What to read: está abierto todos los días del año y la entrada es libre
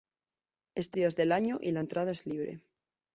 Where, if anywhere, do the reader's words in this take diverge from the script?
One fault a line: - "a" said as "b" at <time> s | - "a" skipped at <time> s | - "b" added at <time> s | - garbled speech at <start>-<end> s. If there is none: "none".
- "abierto todos los" skipped at 1.0 s